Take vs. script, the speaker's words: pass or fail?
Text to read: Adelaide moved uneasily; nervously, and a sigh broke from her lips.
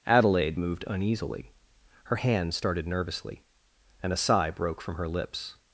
fail